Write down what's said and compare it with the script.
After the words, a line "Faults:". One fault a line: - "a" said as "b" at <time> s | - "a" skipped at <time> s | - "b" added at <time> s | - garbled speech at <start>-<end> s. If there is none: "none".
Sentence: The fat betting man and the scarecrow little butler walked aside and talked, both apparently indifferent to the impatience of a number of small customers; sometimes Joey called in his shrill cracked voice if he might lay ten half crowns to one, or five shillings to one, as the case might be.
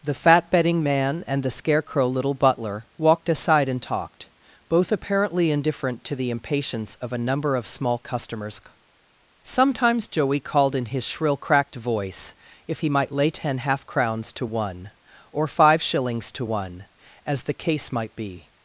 The fat betting man and the scarecrow little butler walked aside and talked, both apparently indifferent to the impatience of a number of small customers; sometimes Joey called in his shrill cracked voice if he might lay ten half crowns to one, or five shillings to one, as the case might be.
Faults:
none